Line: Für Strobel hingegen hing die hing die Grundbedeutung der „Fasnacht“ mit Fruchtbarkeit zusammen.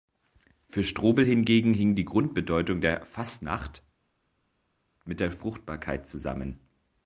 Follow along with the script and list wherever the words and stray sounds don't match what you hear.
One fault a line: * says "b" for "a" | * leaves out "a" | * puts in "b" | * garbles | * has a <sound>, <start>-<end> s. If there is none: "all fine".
* leaves out "hing die"
* puts in "der"